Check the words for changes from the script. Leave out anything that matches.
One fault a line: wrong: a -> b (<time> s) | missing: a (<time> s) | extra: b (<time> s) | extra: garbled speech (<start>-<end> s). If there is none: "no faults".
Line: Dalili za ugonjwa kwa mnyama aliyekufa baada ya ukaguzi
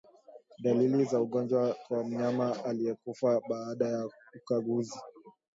no faults